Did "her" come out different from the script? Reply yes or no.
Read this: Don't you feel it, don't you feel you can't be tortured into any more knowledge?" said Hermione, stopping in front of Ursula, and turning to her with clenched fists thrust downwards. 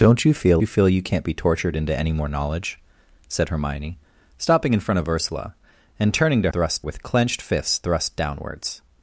yes